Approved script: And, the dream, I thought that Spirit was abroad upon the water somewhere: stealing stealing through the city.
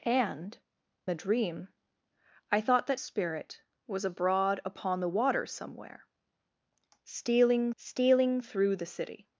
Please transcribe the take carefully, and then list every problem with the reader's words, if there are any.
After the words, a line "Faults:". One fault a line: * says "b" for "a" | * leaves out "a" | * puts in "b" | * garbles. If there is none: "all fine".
And, the dream, I thought that Spirit was abroad upon the water somewhere: stealing stealing through the city.
Faults:
all fine